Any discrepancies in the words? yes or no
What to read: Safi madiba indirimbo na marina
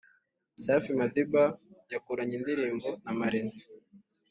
yes